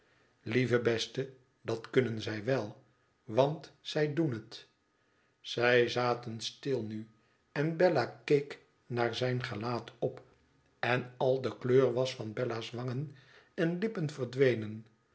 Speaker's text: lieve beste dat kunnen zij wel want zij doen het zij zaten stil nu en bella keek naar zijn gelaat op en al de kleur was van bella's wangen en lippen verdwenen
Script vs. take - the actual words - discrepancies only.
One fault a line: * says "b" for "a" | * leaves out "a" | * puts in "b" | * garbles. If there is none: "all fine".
all fine